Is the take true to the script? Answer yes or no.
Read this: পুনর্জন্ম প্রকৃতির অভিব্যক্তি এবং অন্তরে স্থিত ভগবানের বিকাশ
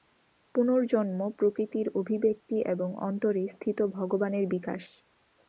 yes